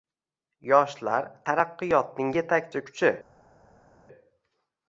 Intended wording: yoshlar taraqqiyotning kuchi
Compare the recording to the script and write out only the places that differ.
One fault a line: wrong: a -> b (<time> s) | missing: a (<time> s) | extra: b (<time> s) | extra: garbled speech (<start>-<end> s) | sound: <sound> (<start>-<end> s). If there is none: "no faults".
extra: yetakchi (2.4 s)